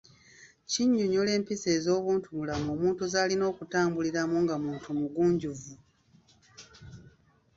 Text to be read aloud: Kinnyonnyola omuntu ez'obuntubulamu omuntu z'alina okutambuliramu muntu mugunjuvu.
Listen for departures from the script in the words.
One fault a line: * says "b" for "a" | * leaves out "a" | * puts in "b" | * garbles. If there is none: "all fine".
* says "empisa" for "omuntu"
* puts in "nga"